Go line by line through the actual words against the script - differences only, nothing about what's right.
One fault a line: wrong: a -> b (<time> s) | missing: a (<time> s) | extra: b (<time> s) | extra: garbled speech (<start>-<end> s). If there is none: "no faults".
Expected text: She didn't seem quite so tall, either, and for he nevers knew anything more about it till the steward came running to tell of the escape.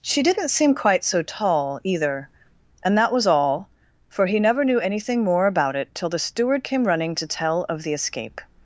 extra: that was all (3.0 s)
wrong: nevers -> never (4.4 s)